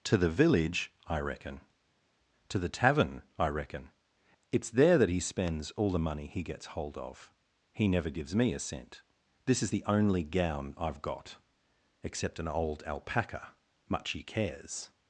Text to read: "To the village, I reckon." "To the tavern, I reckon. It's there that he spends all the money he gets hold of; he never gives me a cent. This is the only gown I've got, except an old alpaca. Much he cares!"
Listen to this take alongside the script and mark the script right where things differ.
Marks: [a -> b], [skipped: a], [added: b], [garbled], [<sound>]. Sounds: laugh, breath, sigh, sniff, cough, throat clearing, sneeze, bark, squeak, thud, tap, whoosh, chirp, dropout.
"To the village, I reckon." "To the tavern, I reckon. It's there that he spends all the money he gets hold of; he never gives me a cent. This is the only gown I've got, except an old alpaca. Much he cares!"